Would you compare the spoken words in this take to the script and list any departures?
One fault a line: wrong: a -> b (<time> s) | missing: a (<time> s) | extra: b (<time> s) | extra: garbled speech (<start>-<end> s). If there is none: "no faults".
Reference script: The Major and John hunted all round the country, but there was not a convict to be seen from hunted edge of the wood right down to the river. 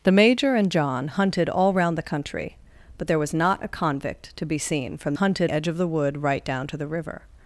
no faults